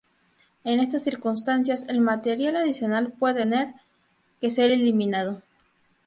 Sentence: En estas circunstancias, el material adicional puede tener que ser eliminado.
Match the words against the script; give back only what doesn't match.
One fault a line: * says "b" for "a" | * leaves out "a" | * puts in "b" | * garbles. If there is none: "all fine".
all fine